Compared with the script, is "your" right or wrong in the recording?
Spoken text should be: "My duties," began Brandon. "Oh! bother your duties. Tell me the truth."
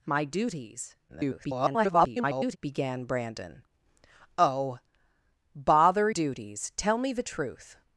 wrong